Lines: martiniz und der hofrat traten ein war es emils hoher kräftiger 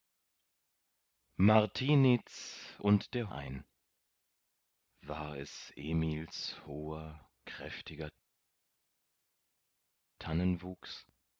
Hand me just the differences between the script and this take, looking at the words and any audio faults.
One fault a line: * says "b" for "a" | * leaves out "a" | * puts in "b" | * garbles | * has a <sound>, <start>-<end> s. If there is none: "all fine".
* leaves out "hofrat traten"